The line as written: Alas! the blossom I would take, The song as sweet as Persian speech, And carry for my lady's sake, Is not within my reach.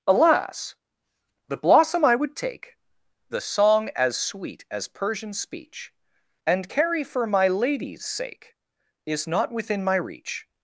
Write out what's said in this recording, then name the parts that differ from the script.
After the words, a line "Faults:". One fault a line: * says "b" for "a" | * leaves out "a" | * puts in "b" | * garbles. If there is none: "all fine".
Alas! the blossom I would take, The song as sweet as Persian speech, And carry for my lady's sake, Is not within my reach.
Faults:
all fine